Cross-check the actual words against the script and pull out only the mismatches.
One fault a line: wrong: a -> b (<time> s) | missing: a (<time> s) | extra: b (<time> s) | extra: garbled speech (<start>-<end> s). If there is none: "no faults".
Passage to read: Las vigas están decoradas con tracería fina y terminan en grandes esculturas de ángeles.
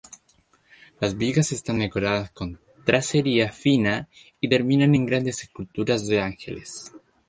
no faults